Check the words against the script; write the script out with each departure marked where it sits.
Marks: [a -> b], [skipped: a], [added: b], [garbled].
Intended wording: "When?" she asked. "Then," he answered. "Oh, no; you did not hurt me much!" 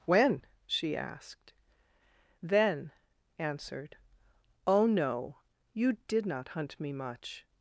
"When?" she asked. "Then," [skipped: he] answered. "Oh, no; you did not [hurt -> hunt] me much!"